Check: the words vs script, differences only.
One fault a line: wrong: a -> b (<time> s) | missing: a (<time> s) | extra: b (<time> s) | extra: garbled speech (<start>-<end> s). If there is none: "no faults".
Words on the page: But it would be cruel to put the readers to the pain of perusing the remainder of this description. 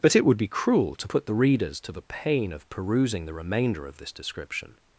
no faults